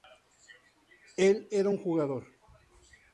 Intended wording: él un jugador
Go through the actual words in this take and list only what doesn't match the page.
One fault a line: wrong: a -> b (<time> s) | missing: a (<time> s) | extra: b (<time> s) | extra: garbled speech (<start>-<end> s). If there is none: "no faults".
extra: era (1.5 s)